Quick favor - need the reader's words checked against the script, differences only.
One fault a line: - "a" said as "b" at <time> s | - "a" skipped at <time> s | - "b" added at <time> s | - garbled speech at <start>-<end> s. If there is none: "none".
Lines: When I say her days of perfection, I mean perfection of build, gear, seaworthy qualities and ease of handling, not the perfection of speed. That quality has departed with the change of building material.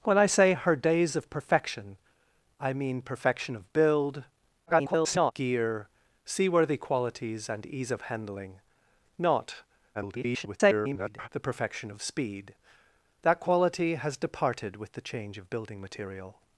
- garbled speech at 4.7-5.3 s
- garbled speech at 9.9-11.3 s